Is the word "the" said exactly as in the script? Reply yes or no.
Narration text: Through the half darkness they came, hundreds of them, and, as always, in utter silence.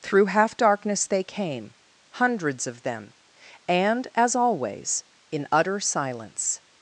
no